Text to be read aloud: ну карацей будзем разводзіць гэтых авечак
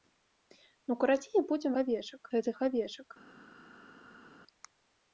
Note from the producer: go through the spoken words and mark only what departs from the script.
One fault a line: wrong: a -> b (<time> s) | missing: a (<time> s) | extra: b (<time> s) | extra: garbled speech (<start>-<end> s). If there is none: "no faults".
wrong: разводзіць -> авечак (1.8 s)